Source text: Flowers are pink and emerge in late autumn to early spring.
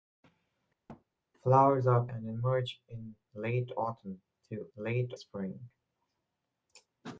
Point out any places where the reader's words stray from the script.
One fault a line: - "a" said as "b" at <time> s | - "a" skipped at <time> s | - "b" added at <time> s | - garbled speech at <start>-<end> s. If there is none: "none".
- "pink" skipped at 2.1 s
- "early" said as "late" at 4.7 s